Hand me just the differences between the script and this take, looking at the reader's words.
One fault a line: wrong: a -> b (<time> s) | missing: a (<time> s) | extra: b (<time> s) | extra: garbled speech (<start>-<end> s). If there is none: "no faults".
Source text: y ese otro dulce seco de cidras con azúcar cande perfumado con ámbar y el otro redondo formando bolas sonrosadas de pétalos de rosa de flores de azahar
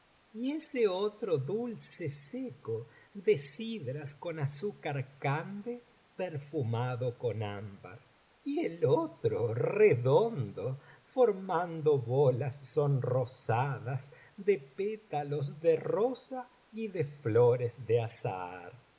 extra: y (16.7 s)